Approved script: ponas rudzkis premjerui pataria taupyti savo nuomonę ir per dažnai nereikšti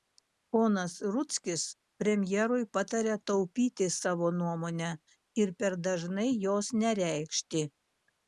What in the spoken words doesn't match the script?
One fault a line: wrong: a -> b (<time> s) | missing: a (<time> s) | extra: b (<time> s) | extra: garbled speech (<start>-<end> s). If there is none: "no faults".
extra: jos (6.5 s)